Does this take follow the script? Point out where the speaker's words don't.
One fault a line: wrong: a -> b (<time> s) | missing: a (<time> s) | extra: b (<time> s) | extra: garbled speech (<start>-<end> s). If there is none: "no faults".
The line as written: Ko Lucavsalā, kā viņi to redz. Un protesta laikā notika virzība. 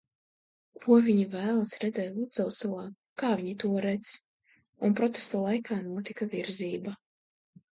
extra: viņi vēlas redzēt (1.1 s)